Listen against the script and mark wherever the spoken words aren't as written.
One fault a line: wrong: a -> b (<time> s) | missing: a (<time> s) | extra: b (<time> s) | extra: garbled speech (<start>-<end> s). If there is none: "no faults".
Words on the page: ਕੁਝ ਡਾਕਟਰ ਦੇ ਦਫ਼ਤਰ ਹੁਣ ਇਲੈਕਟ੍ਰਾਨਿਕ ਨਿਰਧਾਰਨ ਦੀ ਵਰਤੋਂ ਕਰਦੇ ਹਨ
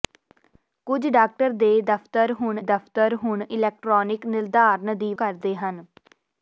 extra: ਦਫ਼ਤਰ ਹੁਣ (2.6 s)
missing: ਵਰਤੋਂ (5.1 s)